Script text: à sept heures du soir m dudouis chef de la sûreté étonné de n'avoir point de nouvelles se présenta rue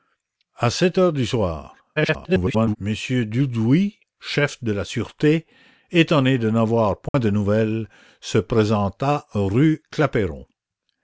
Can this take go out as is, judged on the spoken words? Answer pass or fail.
fail